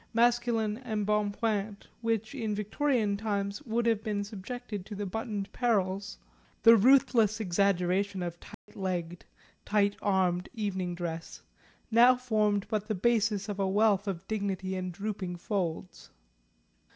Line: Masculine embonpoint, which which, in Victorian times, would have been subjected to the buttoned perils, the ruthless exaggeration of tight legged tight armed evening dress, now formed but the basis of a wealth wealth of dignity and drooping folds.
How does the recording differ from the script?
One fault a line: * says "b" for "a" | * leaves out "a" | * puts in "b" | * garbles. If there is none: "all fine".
* leaves out "which"
* leaves out "wealth"